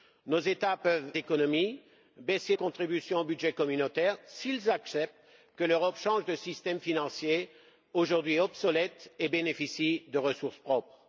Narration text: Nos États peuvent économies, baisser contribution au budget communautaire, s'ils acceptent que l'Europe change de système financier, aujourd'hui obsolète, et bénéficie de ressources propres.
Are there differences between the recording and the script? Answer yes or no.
no